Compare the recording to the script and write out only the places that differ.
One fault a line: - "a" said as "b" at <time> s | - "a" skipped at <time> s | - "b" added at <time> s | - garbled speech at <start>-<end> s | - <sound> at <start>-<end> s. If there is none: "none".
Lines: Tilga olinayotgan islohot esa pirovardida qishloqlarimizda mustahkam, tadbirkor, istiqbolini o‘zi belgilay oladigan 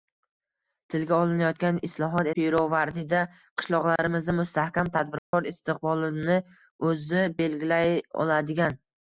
- "esa" skipped at 2.3 s
- dropout at 4.0-4.0 s
- dropout at 5.2-5.3 s